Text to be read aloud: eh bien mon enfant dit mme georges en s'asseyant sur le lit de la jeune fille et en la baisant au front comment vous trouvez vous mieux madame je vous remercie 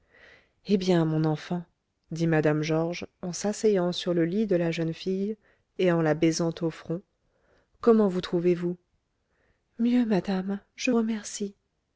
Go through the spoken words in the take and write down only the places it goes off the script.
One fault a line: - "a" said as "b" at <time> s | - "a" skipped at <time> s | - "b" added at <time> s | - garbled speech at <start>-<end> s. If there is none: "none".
- "vous" skipped at 10.9 s